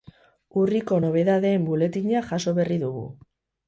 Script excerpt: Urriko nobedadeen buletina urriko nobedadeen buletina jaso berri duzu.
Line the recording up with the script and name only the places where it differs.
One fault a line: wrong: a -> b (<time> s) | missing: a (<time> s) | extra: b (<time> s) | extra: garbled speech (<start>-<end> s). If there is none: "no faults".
missing: urriko nobedadeen buletina (2.3 s)
wrong: duzu -> dugu (2.9 s)